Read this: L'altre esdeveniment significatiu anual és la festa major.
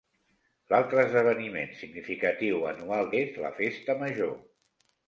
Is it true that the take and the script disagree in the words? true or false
false